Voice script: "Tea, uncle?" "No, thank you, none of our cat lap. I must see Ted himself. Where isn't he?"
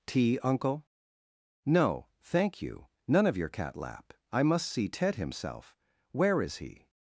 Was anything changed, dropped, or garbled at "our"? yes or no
yes